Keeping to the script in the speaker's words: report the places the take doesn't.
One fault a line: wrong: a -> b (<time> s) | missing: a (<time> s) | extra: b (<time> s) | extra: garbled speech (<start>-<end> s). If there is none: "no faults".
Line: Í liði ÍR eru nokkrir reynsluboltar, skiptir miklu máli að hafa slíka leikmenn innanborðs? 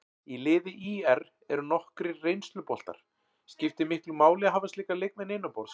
no faults